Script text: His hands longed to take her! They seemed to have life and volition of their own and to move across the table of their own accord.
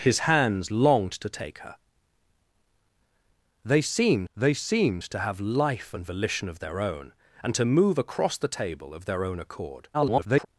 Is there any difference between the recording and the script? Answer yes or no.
yes